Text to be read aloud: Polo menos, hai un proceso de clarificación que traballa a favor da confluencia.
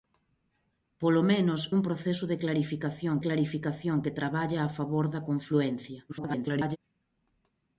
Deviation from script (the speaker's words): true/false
true